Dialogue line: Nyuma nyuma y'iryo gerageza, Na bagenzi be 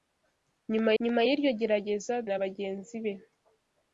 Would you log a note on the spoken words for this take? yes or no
no